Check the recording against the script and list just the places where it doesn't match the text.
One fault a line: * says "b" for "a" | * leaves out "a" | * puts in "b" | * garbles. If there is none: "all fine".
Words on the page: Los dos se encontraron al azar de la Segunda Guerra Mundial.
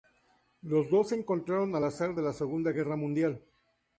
all fine